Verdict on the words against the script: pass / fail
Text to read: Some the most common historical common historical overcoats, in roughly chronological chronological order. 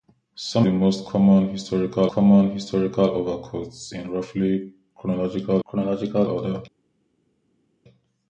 pass